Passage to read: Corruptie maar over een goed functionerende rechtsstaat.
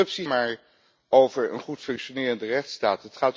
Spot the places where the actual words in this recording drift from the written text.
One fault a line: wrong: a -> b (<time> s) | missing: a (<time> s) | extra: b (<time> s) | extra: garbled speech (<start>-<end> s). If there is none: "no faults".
no faults